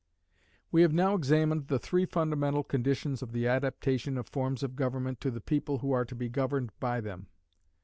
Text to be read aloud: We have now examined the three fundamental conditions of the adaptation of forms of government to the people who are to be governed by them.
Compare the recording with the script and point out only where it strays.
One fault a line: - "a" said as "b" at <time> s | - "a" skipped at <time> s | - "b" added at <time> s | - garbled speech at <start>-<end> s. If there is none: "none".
none